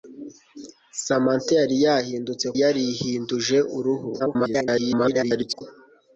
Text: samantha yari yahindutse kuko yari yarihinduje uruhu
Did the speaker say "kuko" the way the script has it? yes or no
no